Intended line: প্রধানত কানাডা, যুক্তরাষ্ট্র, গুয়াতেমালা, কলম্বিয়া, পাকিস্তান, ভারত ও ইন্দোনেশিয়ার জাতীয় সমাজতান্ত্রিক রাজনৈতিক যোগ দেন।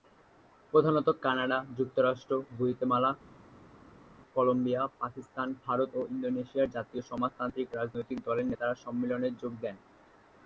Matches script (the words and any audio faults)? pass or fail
fail